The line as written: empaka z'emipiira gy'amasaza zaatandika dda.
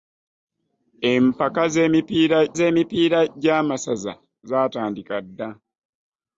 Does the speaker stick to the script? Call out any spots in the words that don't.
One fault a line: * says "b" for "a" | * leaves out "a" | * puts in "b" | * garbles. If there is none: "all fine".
* puts in "z'emipiira"